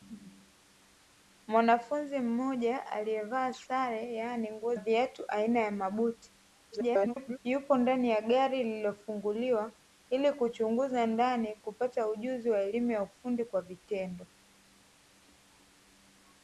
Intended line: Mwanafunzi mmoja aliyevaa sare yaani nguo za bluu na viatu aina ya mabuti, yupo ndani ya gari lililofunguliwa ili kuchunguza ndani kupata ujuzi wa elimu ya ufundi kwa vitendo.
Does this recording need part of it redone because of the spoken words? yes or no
yes